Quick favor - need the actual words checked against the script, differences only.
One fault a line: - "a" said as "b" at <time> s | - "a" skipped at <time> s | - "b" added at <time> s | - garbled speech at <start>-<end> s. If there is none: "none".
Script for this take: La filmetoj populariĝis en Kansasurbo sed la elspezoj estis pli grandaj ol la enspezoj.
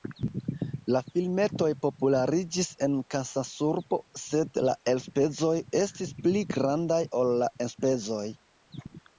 none